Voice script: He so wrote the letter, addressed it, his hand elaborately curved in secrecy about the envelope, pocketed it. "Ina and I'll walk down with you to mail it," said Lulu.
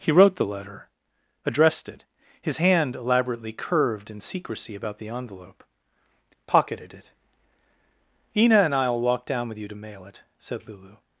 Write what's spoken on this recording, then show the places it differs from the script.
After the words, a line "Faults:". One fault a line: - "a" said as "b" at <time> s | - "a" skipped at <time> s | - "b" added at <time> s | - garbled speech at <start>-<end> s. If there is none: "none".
He wrote the letter, addressed it, his hand elaborately curved in secrecy about the envelope, pocketed it. "Ina and I'll walk down with you to mail it," said Lulu.
Faults:
- "so" skipped at 0.1 s